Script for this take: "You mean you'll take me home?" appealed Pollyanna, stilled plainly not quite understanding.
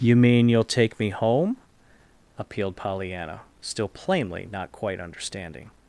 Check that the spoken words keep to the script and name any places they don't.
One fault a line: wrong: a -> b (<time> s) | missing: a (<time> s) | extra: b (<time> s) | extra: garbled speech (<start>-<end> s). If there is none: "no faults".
wrong: stilled -> still (3.6 s)